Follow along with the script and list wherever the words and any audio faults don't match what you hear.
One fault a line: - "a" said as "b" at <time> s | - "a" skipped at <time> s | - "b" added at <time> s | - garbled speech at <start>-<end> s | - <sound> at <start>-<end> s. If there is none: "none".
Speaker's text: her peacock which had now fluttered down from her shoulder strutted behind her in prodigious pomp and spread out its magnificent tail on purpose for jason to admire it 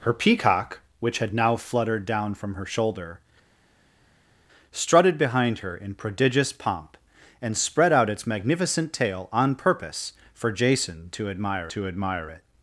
- "to admire" added at 11.7 s